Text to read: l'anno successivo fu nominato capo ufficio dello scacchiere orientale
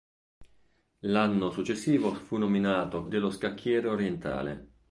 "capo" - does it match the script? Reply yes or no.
no